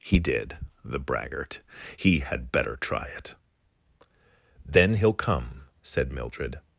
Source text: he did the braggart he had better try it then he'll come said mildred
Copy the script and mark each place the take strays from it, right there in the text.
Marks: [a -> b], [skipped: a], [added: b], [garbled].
he did the braggart he had better try it then he'll come said mildred